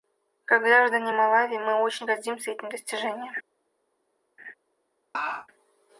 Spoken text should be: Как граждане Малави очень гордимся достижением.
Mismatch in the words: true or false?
true